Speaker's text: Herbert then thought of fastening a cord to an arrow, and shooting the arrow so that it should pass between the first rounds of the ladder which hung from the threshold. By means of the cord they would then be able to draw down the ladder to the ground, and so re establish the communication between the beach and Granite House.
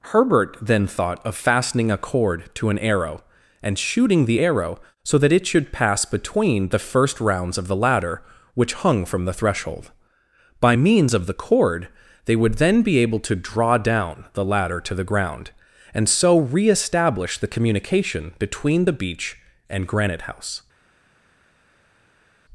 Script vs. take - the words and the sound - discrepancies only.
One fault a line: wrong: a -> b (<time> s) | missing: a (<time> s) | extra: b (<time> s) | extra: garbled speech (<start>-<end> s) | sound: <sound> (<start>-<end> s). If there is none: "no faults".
no faults